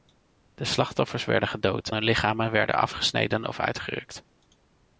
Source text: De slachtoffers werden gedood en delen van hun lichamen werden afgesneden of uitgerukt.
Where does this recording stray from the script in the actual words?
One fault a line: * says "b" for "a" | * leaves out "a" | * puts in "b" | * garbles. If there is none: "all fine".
* leaves out "en delen van"